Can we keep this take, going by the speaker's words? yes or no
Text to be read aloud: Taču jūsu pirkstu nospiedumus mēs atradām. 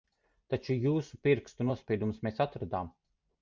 yes